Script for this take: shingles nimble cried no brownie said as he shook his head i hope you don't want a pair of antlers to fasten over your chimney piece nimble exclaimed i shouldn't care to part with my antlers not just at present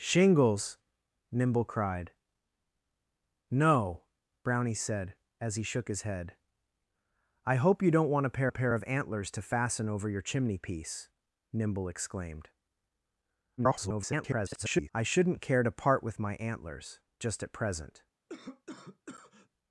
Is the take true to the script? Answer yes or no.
no